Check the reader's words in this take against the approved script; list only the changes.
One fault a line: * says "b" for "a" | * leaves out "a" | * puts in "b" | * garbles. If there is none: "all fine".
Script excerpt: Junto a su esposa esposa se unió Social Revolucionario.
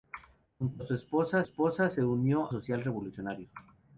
all fine